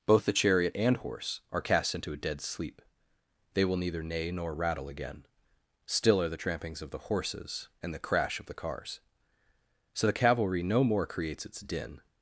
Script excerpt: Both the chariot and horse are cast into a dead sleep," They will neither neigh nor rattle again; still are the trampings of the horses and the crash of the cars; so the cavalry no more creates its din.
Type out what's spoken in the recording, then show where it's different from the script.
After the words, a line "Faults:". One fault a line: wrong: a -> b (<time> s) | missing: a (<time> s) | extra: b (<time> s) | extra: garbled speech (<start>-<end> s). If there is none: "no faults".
Both the chariot and horse are cast into a dead sleep," They will neither neigh nor rattle again; still are the trampings of the horses and the crash of the cars; so the cavalry no more creates its din.
Faults:
no faults